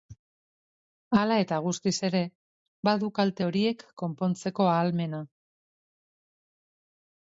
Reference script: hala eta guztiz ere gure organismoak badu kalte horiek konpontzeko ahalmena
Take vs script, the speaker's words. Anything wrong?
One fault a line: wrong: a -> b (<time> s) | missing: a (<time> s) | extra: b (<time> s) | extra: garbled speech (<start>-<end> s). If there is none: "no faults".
missing: gure organismoak (2.2 s)